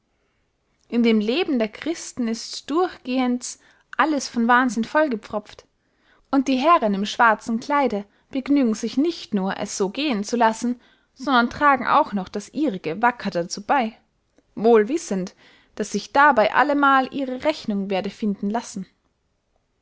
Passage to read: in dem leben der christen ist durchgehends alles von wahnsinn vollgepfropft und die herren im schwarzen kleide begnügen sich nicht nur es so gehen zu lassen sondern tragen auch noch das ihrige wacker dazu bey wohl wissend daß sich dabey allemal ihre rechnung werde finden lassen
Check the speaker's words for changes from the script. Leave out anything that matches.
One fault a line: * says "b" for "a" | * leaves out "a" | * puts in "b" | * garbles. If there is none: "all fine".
all fine